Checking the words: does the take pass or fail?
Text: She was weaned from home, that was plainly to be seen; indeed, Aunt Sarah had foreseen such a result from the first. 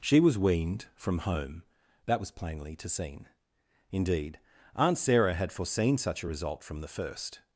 fail